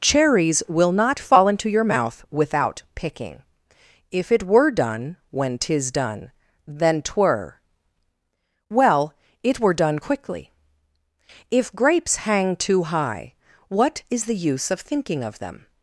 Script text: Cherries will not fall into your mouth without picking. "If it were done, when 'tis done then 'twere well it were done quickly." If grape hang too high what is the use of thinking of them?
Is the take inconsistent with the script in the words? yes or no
yes